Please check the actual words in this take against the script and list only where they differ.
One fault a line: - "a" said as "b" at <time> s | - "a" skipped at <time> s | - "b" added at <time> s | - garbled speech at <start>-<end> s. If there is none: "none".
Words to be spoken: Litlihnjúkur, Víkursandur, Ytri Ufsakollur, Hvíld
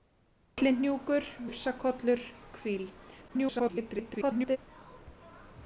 - "Víkursandur Ytri" skipped at 1.3 s
- garbled speech at 3.3-4.6 s